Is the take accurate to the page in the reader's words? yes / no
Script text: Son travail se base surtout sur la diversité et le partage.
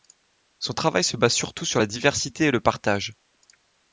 yes